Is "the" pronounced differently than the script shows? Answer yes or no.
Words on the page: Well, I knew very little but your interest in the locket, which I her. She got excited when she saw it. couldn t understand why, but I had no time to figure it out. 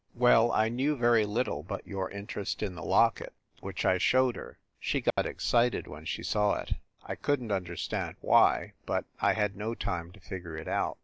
no